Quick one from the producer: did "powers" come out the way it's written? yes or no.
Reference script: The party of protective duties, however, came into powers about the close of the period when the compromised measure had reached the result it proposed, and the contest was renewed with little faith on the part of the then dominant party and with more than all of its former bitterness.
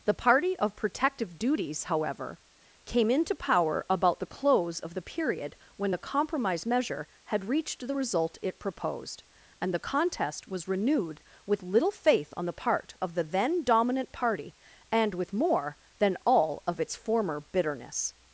no